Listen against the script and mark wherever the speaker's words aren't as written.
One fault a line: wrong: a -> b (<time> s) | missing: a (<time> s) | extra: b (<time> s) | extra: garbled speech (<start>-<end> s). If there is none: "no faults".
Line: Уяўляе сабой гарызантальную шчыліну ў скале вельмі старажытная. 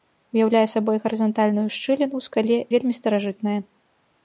no faults